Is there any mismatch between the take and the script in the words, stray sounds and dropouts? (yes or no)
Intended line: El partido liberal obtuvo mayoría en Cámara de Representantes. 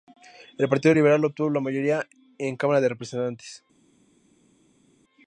yes